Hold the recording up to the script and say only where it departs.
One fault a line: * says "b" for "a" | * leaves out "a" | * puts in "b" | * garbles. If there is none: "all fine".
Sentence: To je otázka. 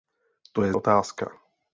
all fine